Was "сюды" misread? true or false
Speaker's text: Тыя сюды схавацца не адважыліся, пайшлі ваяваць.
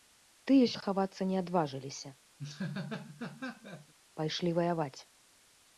true